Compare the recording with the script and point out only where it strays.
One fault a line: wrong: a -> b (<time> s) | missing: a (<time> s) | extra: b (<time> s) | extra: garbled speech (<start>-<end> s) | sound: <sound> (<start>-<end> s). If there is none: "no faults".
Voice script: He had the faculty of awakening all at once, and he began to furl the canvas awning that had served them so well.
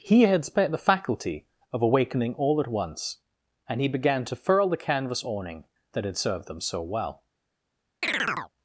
extra: spent (0.4 s)
sound: chirp (8.0-8.5 s)